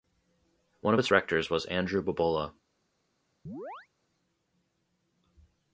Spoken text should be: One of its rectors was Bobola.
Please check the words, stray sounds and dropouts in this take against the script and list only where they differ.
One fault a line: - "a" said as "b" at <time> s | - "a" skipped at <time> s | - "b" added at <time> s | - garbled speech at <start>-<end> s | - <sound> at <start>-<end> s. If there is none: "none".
- "Andrew" added at 1.7 s
- chirp at 3.5-3.9 s